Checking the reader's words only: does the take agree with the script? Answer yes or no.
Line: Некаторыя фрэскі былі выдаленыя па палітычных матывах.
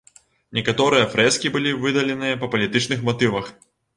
yes